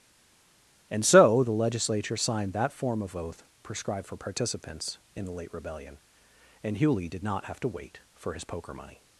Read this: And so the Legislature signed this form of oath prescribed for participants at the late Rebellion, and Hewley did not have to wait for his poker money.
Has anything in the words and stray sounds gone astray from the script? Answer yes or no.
yes